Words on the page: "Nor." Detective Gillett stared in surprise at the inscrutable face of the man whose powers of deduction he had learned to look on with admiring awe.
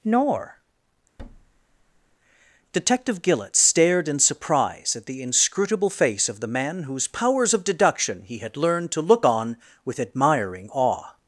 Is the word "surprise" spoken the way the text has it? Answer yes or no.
yes